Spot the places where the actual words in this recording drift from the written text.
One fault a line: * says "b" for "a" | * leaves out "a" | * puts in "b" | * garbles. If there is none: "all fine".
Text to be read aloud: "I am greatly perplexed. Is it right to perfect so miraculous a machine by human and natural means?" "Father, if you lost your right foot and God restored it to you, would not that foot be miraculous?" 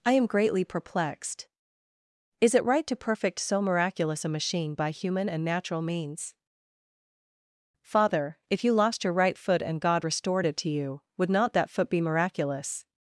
all fine